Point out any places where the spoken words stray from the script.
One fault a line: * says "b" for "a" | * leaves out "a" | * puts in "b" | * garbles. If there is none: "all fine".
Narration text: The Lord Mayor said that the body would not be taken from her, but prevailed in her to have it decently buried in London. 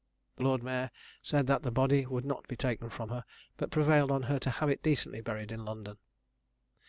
* says "on" for "in"